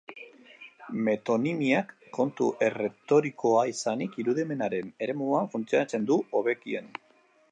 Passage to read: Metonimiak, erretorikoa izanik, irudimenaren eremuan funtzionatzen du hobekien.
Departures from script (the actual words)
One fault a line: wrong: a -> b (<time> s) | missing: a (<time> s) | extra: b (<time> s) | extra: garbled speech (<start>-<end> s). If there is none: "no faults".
extra: kontu (2.2 s)